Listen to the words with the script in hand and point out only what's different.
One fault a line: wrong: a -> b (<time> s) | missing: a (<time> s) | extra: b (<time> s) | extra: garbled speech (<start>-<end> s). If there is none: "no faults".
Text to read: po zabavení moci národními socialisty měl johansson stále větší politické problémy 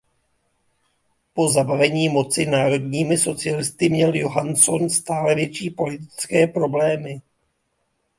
no faults